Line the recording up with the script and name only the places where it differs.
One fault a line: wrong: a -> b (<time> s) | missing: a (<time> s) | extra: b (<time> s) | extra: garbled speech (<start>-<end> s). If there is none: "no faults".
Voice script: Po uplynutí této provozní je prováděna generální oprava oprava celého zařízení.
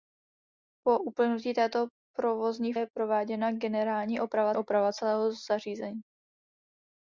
no faults